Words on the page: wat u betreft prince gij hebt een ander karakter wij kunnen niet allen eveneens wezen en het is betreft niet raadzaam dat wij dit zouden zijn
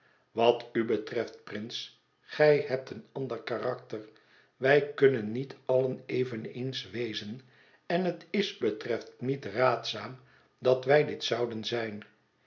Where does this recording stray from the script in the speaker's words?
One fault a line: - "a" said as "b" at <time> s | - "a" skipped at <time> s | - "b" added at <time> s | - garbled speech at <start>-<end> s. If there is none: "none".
none